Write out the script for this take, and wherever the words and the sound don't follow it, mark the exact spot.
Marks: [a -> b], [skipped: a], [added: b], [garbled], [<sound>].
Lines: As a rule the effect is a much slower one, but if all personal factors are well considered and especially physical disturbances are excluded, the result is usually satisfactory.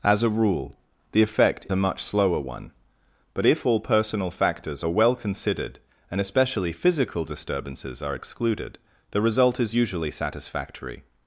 As a rule the effect [skipped: is] a much slower one, but if all personal factors are well considered and especially physical disturbances are excluded, the result is usually satisfactory.